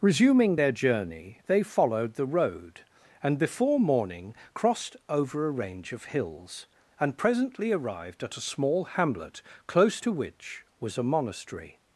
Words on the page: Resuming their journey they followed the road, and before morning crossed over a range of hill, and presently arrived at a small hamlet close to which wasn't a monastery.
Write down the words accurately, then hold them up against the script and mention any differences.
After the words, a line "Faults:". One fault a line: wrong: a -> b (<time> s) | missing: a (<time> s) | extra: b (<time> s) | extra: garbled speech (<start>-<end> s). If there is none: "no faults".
Resuming their journey they followed the road, and before morning crossed over a range of hills, and presently arrived at a small hamlet close to which was a monastery.
Faults:
wrong: hill -> hills (6.2 s)
wrong: wasn't -> was (10.8 s)